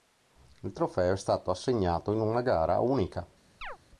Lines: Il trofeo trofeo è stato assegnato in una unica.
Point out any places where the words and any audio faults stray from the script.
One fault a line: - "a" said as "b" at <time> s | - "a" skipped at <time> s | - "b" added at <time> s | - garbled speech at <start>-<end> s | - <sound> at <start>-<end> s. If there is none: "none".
- "trofeo" skipped at 1.1 s
- "gara" added at 2.4 s
- chirp at 3.6-3.8 s